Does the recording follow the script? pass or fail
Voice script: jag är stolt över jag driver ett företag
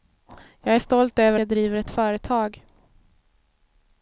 pass